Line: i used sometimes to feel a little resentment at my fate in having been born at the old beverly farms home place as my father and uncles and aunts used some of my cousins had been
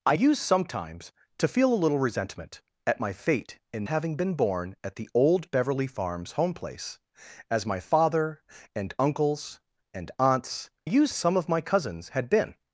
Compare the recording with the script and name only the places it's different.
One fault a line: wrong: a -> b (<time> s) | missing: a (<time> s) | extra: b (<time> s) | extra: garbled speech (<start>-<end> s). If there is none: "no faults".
no faults